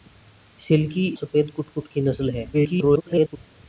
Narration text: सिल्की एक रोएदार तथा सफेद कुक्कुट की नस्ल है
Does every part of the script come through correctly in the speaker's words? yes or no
no